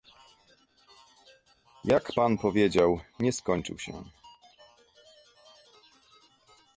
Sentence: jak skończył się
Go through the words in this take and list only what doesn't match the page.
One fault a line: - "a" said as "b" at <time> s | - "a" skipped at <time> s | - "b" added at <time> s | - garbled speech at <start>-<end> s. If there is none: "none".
- "pan powiedział nie" added at 2.1 s